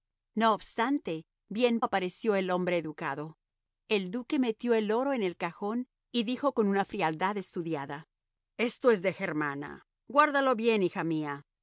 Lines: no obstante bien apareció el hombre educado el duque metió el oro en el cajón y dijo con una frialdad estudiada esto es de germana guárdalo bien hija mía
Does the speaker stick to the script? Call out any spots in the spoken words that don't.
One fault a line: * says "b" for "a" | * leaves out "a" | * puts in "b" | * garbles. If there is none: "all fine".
all fine